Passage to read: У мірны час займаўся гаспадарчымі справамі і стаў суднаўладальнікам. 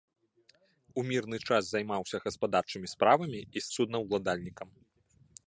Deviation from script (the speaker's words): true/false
true